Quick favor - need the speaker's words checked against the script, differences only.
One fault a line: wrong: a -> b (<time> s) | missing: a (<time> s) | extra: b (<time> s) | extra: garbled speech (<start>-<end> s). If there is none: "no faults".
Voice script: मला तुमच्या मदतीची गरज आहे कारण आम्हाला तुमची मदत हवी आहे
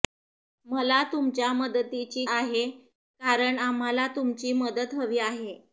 missing: गरज (2.2 s)